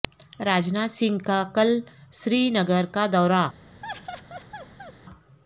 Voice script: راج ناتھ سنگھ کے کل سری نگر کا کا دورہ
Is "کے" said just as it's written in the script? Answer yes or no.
no